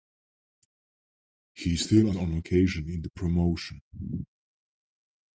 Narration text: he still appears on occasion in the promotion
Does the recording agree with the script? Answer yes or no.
no